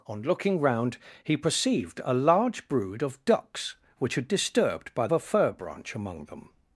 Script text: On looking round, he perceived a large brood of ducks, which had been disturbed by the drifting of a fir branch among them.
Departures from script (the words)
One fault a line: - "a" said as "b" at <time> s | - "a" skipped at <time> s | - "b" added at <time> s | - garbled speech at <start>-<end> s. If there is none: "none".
- "been" skipped at 4.3 s
- "the drifting of" skipped at 5.1 s